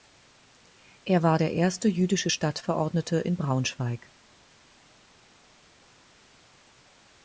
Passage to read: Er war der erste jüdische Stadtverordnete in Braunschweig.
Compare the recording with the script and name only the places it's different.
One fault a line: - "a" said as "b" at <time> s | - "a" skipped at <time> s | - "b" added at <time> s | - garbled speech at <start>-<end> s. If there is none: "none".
none